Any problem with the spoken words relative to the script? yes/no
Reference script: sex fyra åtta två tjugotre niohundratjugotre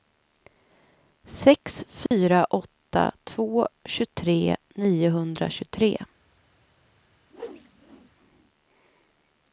no